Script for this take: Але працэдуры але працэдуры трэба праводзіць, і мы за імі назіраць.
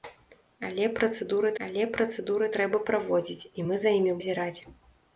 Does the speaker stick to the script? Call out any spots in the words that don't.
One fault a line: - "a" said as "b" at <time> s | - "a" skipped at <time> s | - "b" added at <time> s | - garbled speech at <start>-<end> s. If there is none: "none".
none